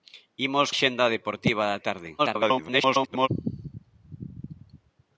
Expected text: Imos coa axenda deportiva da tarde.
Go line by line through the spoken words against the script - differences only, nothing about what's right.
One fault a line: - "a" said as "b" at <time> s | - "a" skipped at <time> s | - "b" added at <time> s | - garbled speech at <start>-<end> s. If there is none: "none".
- "coa" skipped at 0.7 s
- garbled speech at 2.2-3.3 s